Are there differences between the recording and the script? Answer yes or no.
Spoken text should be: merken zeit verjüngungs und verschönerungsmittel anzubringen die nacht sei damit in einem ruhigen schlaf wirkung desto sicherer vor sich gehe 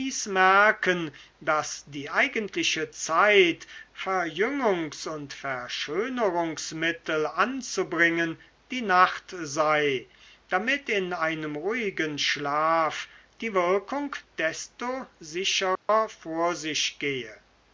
yes